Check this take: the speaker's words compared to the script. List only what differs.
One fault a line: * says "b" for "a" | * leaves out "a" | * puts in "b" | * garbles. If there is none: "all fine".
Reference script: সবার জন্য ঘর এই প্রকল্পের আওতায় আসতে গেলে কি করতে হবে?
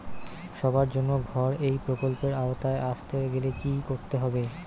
all fine